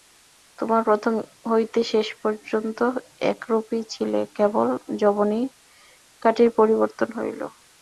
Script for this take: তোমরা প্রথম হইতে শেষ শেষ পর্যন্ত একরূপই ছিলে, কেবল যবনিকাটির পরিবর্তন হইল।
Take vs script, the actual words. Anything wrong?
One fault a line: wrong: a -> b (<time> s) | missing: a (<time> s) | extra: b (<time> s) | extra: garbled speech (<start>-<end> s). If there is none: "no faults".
missing: শেষ (2.1 s)